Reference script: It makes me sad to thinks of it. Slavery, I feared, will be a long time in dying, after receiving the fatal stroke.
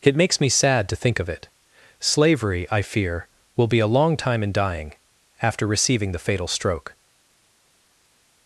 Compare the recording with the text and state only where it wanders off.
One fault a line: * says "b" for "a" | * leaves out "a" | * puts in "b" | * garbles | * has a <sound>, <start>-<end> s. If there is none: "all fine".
* says "think" for "thinks"
* says "fear" for "feared"